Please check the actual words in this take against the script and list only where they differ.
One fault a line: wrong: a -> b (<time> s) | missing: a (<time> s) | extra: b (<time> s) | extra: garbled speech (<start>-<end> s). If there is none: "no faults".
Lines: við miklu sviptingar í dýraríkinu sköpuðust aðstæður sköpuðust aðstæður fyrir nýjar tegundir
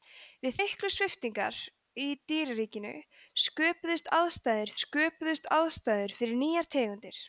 no faults